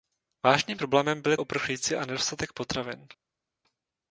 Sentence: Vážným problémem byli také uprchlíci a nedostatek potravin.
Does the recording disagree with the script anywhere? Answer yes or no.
yes